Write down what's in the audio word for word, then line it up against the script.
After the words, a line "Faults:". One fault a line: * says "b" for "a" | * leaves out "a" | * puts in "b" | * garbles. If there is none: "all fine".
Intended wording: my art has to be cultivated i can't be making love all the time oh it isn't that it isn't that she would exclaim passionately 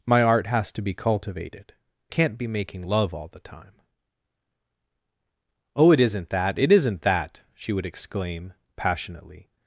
my art has to be cultivated can't be making love all the time oh it isn't that it isn't that she would exclaim passionately
Faults:
* leaves out "i"